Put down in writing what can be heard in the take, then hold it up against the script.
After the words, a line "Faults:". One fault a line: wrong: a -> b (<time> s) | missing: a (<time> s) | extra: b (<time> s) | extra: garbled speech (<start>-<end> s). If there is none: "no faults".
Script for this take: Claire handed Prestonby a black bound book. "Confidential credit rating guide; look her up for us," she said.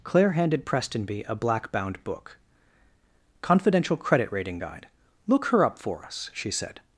Claire handed Prestonby a black bound book. "Confidential credit rating guide; look her up for us," she said.
Faults:
no faults